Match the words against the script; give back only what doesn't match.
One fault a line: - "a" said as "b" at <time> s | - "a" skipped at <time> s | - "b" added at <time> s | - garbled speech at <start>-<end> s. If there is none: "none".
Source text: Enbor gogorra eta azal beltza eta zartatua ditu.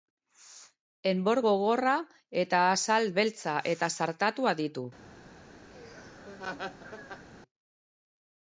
none